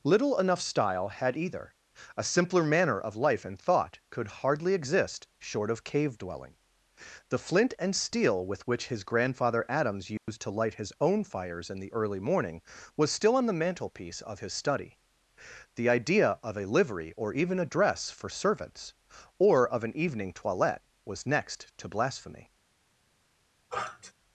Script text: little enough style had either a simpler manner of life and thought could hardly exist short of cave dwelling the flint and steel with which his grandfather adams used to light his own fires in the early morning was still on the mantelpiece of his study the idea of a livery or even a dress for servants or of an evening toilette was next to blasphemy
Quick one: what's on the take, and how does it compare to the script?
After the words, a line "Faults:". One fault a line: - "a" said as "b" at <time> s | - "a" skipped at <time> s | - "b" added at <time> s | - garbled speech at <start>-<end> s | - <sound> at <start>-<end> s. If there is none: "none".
little enough style had either a simpler manner of life and thought could hardly exist short of cave dwelling the flint and steel with which his grandfather adams used to light his own fires in the early morning was still on the mantelpiece of his study the idea of a livery or even a dress for servants or of an evening toilette was next to blasphemy
Faults:
- dropout at 10.2-10.3 s
- sniff at 23.7-24.1 s